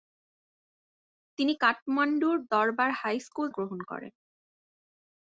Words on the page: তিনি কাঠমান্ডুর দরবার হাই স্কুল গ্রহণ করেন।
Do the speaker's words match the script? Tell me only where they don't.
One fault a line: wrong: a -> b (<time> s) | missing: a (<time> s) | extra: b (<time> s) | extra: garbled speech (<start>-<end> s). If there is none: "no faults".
no faults